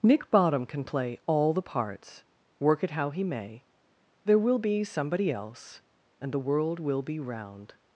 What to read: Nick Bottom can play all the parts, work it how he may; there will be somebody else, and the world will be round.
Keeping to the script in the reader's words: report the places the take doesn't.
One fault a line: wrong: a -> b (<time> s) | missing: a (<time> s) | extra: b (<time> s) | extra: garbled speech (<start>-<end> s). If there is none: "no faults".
no faults